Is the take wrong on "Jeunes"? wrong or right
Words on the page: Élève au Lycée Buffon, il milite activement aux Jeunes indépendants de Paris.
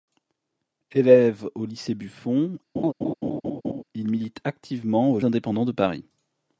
wrong